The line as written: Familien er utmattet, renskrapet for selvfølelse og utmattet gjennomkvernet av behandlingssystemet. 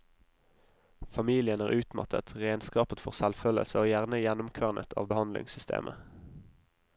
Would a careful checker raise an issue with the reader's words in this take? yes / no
yes